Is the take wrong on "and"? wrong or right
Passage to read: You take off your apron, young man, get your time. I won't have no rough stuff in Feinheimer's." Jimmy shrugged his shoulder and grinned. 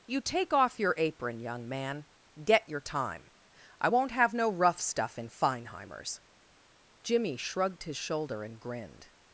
right